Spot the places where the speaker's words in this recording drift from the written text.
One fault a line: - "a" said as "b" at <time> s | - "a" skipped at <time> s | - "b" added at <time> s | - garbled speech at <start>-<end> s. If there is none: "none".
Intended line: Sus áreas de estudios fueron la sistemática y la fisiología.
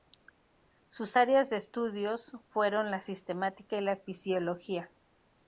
none